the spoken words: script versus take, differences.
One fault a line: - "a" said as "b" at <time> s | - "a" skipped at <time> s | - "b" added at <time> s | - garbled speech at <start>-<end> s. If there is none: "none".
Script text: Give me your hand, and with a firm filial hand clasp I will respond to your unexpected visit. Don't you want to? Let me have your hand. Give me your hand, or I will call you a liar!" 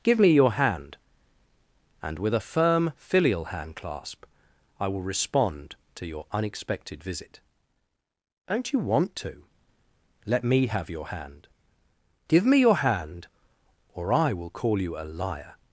none